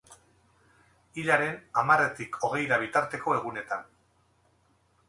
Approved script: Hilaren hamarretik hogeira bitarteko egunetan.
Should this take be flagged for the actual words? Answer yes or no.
no